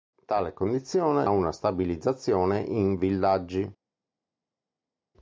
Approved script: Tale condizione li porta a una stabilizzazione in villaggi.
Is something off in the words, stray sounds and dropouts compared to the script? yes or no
yes